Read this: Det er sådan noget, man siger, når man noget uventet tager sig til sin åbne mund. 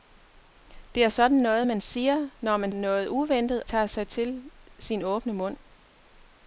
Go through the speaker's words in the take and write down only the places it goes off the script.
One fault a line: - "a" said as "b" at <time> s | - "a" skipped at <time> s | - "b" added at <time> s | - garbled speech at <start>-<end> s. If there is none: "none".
none